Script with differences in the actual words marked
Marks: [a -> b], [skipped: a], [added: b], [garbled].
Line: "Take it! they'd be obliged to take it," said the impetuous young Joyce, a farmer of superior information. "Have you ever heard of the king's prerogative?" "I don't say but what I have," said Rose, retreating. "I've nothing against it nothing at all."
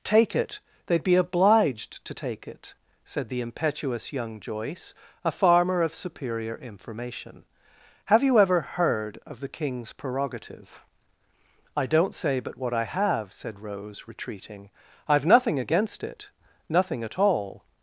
"Take it! they'd be obliged to take it," said the impetuous young Joyce, a farmer of superior information. "Have you ever heard of the king's prerogative?" "I don't say but what I have," said Rose, retreating. "I've nothing against it nothing at all."